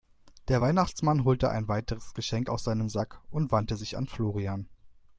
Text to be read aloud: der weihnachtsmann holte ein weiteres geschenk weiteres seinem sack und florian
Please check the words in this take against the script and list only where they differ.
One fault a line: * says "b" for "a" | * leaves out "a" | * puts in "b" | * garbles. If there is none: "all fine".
* says "aus" for "weiteres"
* puts in "wandte sich an"